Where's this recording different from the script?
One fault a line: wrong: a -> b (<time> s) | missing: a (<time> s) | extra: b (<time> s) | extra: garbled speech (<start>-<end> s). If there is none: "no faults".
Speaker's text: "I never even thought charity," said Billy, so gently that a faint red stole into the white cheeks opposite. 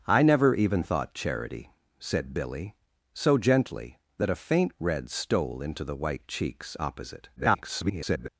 extra: garbled speech (7.4-8.3 s)